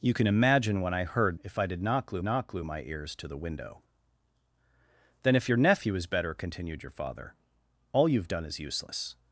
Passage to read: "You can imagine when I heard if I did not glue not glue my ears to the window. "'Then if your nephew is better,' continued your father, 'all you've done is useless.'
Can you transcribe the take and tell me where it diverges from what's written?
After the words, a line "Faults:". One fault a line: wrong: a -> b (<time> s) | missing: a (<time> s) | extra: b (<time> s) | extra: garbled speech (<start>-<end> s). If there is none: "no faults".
"You can imagine when I heard if I did not glue not glue my ears to the window. "'Then if your nephew is better,' continued your father, 'all you've done is useless.'
Faults:
no faults